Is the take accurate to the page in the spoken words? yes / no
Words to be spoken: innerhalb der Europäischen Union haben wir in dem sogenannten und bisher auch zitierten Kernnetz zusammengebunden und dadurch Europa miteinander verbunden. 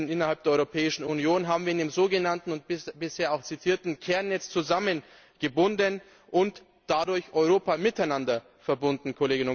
yes